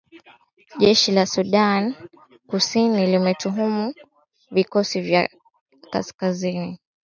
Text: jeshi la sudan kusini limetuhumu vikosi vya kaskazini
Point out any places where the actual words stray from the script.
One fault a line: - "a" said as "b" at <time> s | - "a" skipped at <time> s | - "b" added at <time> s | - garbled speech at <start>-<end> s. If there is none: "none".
none